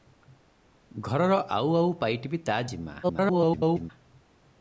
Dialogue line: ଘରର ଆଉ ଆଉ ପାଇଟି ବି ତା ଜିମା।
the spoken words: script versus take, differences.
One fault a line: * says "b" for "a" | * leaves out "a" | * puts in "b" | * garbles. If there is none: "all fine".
* garbles